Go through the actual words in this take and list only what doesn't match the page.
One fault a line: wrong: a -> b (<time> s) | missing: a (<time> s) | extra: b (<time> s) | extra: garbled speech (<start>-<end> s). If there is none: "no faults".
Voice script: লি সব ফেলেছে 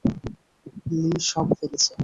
no faults